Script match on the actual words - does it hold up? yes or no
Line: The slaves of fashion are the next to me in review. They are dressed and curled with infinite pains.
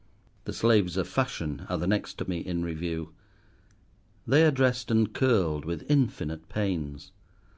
yes